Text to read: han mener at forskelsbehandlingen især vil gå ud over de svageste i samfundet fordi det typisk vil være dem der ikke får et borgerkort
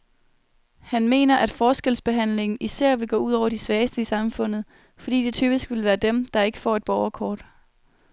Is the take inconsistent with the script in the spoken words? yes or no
no